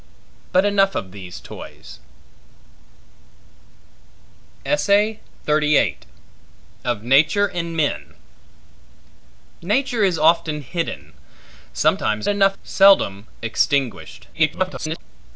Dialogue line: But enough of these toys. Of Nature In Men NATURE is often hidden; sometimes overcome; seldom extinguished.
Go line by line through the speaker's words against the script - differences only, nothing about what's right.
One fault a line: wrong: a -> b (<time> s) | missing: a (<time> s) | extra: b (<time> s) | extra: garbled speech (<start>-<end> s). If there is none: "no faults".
wrong: overcome -> enough (12.3 s)
extra: garbled speech (14.3-15.0 s)